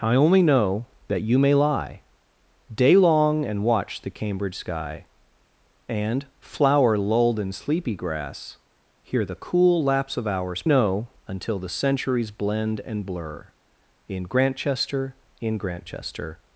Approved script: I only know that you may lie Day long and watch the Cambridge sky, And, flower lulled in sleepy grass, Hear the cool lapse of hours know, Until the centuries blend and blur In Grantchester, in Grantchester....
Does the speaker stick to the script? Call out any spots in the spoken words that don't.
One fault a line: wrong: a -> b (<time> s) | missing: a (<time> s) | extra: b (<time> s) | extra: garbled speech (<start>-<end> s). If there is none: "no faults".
no faults